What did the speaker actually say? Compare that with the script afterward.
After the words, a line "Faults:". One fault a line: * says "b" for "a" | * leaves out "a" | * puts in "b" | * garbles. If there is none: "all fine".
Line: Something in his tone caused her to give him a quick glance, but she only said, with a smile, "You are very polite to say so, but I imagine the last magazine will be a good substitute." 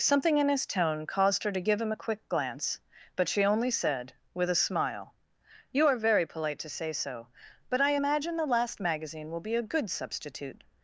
Something in his tone caused her to give him a quick glance, but she only said, with a smile, "You are very polite to say so, but I imagine the last magazine will be a good substitute."
Faults:
all fine